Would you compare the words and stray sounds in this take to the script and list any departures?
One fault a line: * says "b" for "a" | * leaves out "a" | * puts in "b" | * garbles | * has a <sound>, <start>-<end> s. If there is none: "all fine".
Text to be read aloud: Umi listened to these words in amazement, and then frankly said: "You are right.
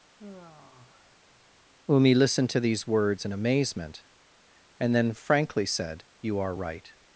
* has a sigh, 0.2-1.7 s